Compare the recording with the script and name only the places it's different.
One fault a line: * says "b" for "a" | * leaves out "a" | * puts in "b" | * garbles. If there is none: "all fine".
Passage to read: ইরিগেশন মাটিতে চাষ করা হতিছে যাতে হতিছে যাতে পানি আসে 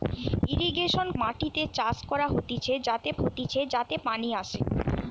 all fine